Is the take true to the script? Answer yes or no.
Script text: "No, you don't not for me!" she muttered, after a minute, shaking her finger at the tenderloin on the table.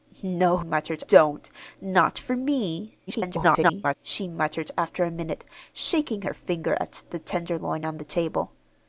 no